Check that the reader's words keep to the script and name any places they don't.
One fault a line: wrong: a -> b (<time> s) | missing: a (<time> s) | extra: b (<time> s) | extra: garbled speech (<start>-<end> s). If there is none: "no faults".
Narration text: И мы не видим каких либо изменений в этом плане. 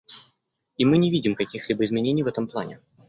no faults